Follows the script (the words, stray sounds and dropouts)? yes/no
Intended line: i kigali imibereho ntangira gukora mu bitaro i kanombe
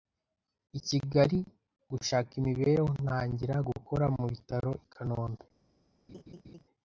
no